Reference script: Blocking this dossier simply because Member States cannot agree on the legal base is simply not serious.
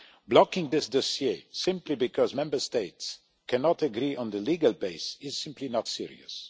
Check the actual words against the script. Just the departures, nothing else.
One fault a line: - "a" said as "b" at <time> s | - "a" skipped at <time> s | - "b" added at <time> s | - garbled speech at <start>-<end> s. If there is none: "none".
none